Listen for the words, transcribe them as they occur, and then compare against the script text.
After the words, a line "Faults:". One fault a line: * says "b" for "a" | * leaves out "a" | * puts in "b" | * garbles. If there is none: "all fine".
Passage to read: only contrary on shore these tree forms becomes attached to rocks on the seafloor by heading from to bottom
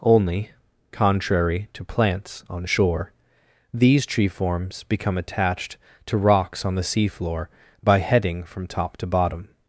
only contrary to plants on shore these tree forms become attached to rocks on the seafloor by heading from top to bottom
Faults:
* puts in "to plants"
* says "become" for "becomes"
* puts in "top"